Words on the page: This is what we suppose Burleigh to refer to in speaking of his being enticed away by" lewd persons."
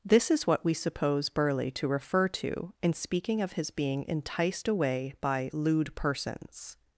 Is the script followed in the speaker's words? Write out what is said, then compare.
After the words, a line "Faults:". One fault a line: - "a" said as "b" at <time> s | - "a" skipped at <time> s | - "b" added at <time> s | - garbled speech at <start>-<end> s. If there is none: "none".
This is what we suppose Burleigh to refer to in speaking of his being enticed away by" lewd persons."
Faults:
none